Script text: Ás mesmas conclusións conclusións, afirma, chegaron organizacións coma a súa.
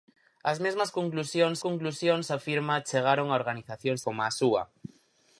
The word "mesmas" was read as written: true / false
true